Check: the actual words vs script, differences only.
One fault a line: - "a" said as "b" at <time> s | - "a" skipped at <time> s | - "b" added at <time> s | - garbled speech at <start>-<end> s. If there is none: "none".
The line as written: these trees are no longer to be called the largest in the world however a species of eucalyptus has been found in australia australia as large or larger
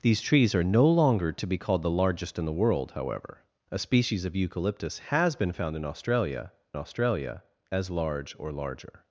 none